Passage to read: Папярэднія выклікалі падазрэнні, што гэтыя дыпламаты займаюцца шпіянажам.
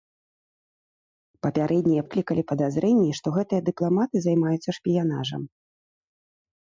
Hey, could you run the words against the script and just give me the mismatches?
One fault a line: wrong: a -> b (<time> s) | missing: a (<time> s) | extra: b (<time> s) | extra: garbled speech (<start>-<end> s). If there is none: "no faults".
no faults